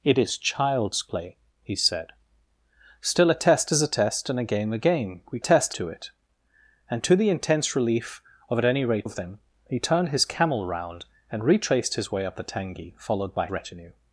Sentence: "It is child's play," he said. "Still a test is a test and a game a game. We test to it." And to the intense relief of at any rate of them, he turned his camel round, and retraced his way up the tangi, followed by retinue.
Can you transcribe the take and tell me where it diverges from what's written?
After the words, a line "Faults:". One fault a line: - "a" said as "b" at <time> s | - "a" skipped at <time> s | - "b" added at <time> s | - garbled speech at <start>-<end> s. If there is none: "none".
"It is child's play," he said. "Still a test is a test and a game a game. We test to it." And to the intense relief of at any rate of them, he turned his camel round, and retraced his way up the tangi, followed by retinue.
Faults:
none